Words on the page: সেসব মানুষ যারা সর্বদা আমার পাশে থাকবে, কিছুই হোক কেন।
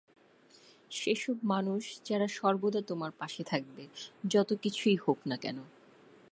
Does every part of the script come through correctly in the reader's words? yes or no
no